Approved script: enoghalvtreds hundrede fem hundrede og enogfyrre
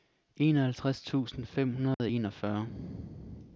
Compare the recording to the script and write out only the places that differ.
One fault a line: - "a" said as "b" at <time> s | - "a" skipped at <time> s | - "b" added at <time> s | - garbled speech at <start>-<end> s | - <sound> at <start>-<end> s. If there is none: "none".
- "hundrede" said as "tusind" at 1.0 s
- dropout at 1.9-2.0 s